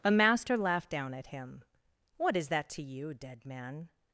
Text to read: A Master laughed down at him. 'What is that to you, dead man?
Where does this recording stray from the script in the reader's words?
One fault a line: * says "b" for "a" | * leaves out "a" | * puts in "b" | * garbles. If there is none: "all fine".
all fine